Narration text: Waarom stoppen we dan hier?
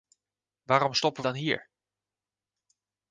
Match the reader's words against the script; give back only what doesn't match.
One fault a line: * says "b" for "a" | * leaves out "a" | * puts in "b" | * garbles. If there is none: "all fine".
* leaves out "we"